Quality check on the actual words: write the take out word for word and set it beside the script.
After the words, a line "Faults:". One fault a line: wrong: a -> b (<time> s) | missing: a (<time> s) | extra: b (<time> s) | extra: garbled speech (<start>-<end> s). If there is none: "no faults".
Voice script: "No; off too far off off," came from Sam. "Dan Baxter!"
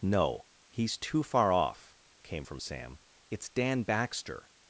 "No; he's too far off," came from Sam. "It's Dan Baxter!"
Faults:
wrong: off -> he's (0.7 s)
missing: off (1.9 s)
extra: It's (3.3 s)